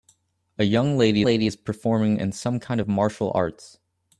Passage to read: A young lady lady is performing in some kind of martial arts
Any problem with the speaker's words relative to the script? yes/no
no